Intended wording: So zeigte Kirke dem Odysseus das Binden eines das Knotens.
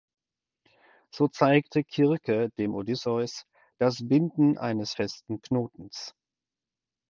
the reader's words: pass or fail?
fail